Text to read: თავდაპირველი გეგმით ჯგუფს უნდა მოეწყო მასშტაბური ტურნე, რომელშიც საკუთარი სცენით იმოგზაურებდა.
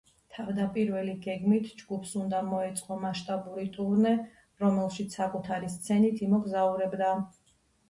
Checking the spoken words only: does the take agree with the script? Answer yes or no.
yes